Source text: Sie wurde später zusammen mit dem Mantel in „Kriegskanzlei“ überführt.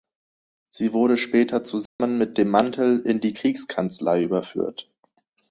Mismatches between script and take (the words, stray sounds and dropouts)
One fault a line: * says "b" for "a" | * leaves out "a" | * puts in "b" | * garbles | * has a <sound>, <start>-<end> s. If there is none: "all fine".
* has a dropout, 1.9-2.0 s
* puts in "die"